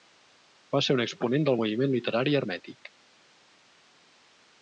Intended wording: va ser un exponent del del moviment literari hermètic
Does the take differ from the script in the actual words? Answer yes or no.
yes